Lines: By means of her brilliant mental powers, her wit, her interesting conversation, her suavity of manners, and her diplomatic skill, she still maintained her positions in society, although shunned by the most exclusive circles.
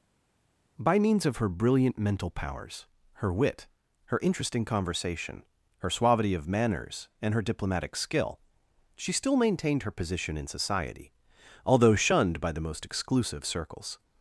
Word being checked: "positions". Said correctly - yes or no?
no